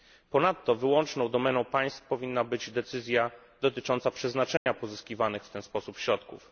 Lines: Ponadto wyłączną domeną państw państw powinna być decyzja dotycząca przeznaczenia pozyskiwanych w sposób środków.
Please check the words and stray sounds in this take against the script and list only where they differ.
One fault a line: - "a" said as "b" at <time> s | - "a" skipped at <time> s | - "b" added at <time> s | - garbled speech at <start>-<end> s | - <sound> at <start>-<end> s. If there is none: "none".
- "państw" skipped at 2.0 s
- dropout at 4.6-4.7 s
- "ten" added at 5.5 s